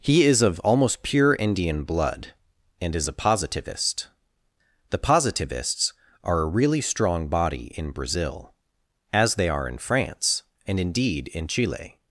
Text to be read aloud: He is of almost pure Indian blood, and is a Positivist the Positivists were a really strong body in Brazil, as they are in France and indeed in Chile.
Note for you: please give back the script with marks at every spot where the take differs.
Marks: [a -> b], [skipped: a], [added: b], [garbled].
He is of almost pure Indian blood, and is a Positivist the Positivists [were -> are] a really strong body in Brazil, as they are in France and indeed in Chile.